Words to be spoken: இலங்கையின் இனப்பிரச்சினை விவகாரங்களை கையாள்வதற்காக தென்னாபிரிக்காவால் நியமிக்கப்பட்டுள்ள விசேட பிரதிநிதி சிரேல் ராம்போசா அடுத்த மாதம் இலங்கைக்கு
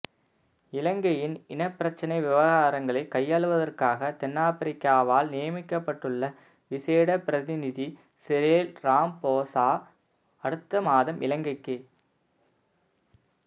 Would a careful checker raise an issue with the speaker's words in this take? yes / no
no